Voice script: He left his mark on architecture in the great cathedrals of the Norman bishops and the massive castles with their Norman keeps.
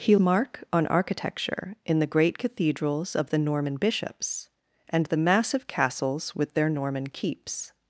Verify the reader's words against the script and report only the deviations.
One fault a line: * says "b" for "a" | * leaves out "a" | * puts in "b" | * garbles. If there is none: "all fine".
* leaves out "left his"